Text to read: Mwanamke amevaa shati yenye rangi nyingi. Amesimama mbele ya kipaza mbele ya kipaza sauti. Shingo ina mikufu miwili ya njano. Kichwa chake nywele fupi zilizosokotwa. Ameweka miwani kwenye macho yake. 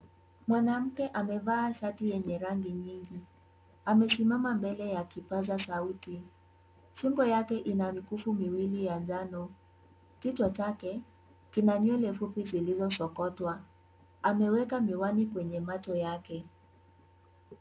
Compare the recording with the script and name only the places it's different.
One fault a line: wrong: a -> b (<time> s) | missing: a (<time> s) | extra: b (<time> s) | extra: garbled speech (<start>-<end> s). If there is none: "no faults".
missing: mbele ya kipaza (5.6 s)
extra: yake (7.2 s)
extra: kina (11.5 s)